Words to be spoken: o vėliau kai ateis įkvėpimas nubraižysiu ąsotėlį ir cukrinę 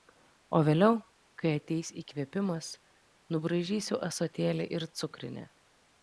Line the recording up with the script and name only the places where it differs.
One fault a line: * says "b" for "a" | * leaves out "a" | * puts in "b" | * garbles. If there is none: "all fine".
all fine